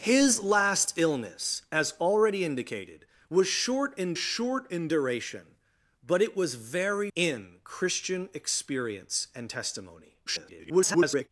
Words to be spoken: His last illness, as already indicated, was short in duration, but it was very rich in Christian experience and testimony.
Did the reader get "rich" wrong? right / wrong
wrong